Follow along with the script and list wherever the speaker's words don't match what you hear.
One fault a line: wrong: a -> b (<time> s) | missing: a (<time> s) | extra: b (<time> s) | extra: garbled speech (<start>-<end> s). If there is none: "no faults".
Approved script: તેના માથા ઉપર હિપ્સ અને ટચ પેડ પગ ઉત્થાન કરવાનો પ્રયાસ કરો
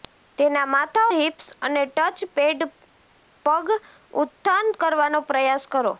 missing: ઉપર (1.0 s)